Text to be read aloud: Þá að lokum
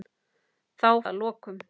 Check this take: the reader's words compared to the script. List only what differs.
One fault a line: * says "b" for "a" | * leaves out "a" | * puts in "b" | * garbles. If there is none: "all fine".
all fine